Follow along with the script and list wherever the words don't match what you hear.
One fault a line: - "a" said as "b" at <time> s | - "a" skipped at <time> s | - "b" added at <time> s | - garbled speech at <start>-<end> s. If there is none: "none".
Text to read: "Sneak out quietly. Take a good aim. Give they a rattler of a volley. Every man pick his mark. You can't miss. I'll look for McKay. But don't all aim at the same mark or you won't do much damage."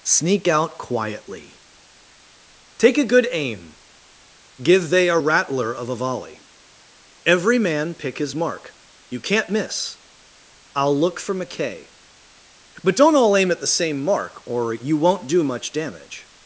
none